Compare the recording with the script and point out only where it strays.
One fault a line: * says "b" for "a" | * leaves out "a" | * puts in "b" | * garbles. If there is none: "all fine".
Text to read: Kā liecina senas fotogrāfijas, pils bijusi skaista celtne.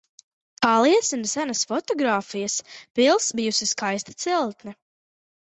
all fine